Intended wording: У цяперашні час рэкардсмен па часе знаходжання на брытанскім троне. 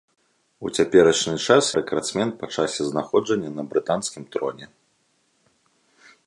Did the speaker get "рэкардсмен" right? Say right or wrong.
right